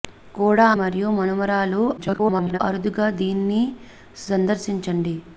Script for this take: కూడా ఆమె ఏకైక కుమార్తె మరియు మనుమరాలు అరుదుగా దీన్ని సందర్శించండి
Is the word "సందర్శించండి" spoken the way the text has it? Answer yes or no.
yes